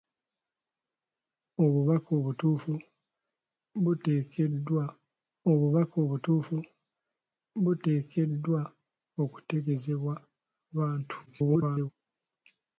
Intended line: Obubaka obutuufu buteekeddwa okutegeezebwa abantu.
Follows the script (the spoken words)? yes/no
no